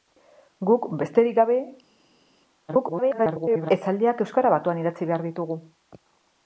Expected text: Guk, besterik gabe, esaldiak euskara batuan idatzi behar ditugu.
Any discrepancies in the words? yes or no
yes